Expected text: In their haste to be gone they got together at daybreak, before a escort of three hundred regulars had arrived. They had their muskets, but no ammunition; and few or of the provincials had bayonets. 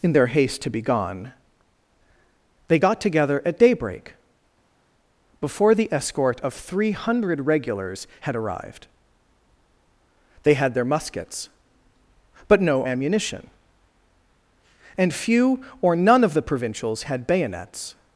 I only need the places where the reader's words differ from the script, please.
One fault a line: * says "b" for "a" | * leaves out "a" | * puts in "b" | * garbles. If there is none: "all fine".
* says "the" for "a"
* puts in "none"